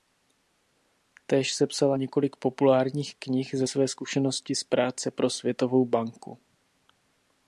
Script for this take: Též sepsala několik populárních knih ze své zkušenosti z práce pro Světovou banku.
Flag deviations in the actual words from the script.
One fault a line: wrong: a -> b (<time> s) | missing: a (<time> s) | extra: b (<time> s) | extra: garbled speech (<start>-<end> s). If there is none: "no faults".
no faults